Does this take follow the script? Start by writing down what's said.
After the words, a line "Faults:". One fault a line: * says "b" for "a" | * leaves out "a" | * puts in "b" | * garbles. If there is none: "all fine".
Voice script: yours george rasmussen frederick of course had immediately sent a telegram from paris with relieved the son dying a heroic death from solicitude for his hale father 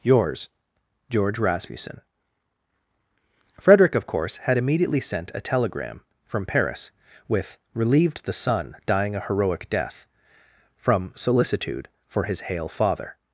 yours george rasmussen frederick of course had immediately sent a telegram from paris with relieved the son dying a heroic death from solicitude for his hale father
Faults:
all fine